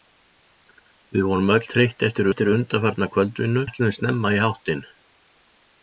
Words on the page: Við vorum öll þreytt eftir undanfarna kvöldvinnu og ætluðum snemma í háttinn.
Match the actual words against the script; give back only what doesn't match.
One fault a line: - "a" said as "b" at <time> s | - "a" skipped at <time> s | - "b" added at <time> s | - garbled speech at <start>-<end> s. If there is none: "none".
- "eftir" added at 2.3 s
- "og" skipped at 3.6 s